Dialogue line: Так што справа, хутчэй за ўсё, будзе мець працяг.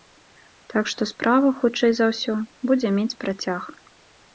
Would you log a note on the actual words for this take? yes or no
no